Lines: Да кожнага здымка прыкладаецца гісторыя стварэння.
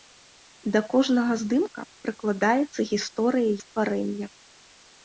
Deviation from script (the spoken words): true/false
false